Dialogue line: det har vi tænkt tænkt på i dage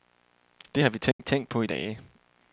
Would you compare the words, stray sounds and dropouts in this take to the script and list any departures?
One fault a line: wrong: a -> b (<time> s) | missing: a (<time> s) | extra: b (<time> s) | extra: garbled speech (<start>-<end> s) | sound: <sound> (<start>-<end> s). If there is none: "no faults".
sound: dropout (1.1-1.2 s)